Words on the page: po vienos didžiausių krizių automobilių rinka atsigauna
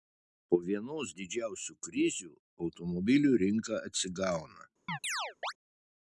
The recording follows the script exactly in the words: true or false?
true